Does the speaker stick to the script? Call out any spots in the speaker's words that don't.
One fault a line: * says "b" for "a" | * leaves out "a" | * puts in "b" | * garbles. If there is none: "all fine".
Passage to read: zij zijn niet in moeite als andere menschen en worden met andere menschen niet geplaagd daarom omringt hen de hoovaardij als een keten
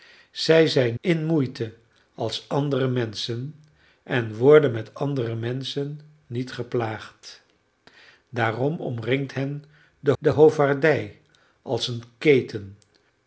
* leaves out "niet"
* puts in "de"